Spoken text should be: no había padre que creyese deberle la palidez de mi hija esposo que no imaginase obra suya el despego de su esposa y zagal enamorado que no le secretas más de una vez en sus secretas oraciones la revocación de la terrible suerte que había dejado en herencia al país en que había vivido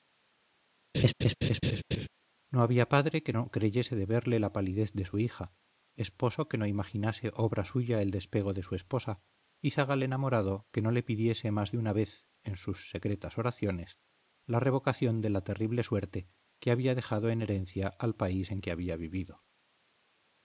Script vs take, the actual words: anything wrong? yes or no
yes